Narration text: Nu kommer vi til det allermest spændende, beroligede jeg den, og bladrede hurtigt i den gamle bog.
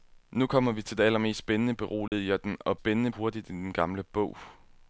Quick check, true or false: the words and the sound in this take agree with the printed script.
false